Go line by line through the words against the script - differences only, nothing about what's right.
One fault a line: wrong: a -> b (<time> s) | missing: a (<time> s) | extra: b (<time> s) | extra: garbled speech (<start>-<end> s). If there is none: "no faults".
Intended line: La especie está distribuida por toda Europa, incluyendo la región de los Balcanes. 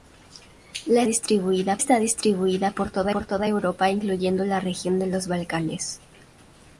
wrong: especie -> distribuida (1.1 s)
extra: por toda (3.1 s)